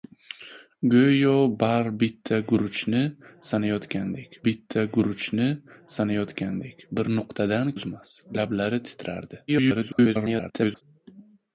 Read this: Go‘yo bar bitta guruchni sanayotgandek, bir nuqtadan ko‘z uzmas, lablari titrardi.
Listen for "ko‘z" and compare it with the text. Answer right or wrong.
wrong